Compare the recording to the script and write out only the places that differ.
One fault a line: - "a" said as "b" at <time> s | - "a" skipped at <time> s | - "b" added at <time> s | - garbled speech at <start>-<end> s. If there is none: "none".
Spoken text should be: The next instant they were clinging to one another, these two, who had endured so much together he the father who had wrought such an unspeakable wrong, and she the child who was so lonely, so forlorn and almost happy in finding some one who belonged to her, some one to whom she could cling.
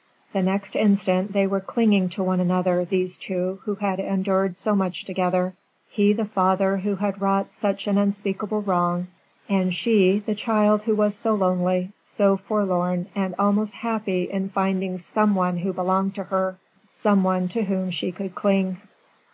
none